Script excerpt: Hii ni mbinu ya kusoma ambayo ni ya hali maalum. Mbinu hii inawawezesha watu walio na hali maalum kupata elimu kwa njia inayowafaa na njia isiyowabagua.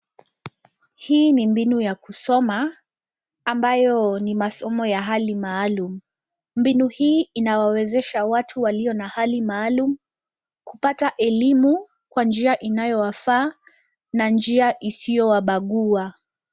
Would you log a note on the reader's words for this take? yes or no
yes